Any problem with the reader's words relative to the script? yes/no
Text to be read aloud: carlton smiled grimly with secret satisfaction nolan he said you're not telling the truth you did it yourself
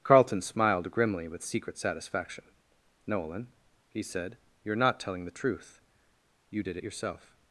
no